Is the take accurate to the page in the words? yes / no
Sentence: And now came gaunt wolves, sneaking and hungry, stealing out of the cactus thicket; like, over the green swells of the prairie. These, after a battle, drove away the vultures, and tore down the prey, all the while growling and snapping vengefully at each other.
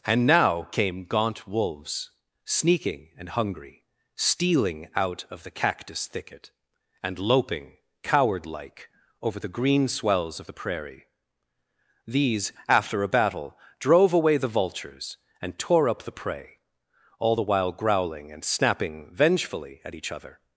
no